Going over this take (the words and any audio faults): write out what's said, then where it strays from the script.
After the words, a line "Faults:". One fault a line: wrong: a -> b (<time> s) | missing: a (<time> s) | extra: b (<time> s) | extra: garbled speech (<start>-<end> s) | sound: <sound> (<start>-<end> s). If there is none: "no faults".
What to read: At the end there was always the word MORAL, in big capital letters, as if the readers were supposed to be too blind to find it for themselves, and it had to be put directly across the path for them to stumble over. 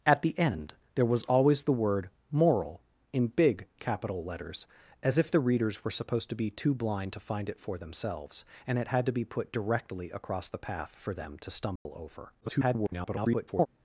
At the end there was always the word MORAL, in big capital letters, as if the readers were supposed to be too blind to find it for themselves, and it had to be put directly across the path for them to stumble over. [garbled]
Faults:
sound: dropout (11.8-11.9 s)
extra: garbled speech (12.4-13.7 s)